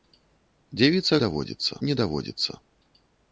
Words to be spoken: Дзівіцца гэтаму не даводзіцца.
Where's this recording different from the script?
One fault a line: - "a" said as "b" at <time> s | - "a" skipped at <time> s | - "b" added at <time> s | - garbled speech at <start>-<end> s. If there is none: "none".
- "гэтаму" said as "даводзіцца" at 1.2 s